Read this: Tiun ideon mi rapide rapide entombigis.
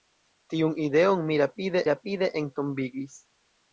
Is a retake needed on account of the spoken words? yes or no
no